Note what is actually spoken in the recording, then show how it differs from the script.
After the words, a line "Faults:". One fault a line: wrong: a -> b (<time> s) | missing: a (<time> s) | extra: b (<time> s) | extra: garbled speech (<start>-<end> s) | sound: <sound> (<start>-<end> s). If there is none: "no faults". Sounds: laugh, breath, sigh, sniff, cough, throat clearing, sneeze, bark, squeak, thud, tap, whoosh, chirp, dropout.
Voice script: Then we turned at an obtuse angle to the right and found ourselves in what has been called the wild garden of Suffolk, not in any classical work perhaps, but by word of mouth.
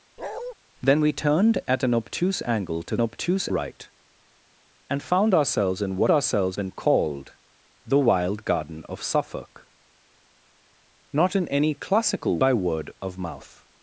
Then we turned at an obtuse angle to obtuse right and found ourselves in what ourselves been called the wild garden of Suffolk, not in any classical by word of mouth.
Faults:
sound: bark (0.2-0.5 s)
wrong: the -> obtuse (3.0 s)
wrong: has -> ourselves (6.1 s)
missing: work perhaps but (12.4 s)